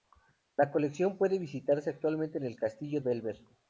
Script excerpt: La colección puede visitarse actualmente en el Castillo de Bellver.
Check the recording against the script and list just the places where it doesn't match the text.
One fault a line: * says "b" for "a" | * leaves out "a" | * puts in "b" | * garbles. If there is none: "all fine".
* leaves out "de"